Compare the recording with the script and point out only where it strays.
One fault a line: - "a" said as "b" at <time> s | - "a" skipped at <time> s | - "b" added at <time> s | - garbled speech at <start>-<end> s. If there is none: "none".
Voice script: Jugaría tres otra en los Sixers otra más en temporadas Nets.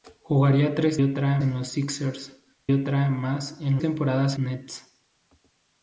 none